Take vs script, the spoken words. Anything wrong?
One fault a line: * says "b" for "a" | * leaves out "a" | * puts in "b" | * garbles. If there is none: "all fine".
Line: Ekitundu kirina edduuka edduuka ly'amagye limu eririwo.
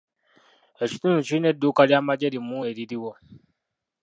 * leaves out "edduuka"